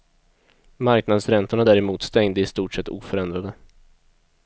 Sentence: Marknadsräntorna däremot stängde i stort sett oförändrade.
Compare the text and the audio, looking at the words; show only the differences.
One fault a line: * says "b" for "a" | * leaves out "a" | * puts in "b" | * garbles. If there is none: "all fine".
all fine